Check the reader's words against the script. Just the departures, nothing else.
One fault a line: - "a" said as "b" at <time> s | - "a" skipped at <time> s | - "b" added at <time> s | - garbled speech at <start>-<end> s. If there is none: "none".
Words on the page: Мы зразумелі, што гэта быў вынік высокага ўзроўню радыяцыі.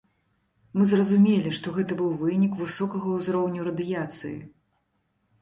none